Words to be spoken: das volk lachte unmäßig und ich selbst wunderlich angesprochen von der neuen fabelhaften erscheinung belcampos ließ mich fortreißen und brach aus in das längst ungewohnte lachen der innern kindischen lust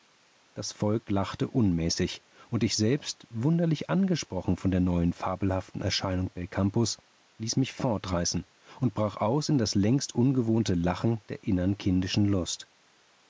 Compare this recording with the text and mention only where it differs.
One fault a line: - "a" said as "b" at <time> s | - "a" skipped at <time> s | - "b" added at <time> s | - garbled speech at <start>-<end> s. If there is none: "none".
none